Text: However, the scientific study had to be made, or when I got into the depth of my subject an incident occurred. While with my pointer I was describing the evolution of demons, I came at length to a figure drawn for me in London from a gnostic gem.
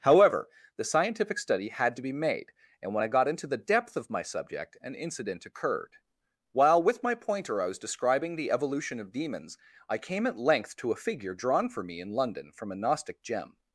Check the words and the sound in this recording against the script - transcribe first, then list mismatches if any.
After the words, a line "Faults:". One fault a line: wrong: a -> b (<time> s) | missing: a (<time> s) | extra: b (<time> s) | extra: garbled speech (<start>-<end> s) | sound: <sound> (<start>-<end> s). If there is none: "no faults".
However, the scientific study had to be made, and when I got into the depth of my subject an incident occurred. While with my pointer I was describing the evolution of demons, I came at length to a figure drawn for me in London from a gnostic gem.
Faults:
wrong: or -> and (2.8 s)